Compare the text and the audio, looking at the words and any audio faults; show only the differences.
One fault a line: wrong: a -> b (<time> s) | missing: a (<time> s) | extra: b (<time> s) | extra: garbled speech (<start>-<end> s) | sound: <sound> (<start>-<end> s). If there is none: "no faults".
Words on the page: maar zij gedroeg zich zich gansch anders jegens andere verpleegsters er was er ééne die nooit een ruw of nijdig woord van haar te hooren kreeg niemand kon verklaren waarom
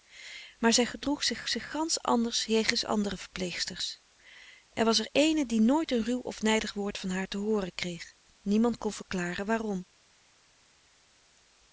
no faults